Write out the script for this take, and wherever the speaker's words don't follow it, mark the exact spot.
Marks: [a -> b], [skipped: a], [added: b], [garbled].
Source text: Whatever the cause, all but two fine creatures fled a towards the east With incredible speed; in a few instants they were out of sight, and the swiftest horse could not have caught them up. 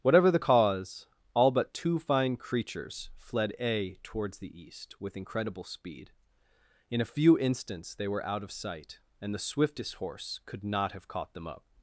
Whatever the cause, all but two fine creatures fled a towards the east With incredible speed; in a few instants they were out of sight, and the swiftest horse could not have caught them up.